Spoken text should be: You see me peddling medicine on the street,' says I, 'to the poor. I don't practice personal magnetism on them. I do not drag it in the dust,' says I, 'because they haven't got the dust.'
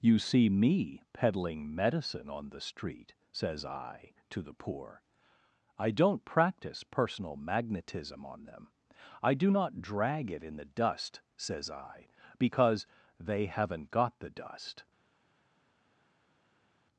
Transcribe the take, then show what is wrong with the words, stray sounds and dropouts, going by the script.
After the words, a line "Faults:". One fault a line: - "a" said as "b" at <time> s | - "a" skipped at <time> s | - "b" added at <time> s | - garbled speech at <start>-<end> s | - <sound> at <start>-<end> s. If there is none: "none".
You see me peddling medicine on the street,' says I, 'to the poor. I don't practice personal magnetism on them. I do not drag it in the dust,' says I, 'because they haven't got the dust.'
Faults:
none